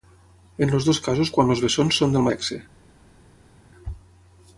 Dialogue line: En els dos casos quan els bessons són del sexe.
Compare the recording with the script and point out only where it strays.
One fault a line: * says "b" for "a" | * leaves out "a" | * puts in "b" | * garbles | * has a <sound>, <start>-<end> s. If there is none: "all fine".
all fine